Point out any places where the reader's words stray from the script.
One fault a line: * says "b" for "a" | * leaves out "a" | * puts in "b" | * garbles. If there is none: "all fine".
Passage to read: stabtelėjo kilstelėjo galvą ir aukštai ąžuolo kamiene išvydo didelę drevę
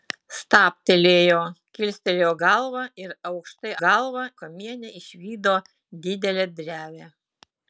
* says "galvą" for "ąžuolo"